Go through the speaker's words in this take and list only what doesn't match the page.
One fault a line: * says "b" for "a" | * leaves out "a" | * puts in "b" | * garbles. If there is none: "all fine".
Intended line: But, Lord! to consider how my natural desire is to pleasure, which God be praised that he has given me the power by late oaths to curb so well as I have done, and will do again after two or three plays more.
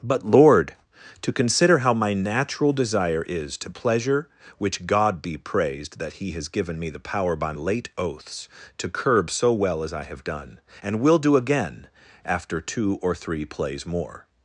all fine